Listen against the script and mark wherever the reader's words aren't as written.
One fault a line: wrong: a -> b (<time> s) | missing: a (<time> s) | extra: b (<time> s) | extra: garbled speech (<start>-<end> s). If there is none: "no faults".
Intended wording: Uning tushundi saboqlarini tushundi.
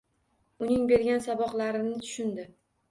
wrong: tushundi -> bergan (0.9 s)